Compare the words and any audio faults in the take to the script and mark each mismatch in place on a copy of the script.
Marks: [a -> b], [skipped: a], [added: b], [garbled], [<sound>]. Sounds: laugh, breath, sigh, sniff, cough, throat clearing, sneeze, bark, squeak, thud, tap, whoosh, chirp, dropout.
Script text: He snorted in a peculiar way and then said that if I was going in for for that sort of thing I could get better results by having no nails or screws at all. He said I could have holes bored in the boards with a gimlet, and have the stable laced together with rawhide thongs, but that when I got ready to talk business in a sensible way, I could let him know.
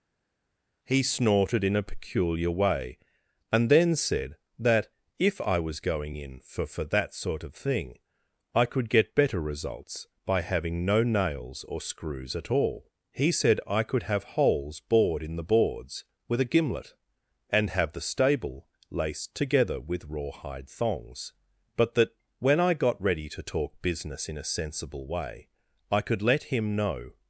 He snorted in a peculiar way and then said that if I was going in for for that sort of thing I could get better results by having no nails or screws at all. He said I could have holes bored in the boards with a gimlet, and have the stable laced together with rawhide thongs, but that when I got ready to talk business in a sensible way, I could let him know.